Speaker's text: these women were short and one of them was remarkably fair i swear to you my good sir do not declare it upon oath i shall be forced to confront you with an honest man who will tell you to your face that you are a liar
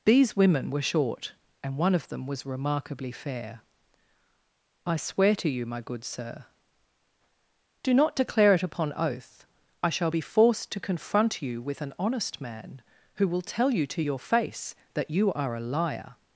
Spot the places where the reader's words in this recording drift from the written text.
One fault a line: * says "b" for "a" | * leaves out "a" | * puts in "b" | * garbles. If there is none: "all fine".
all fine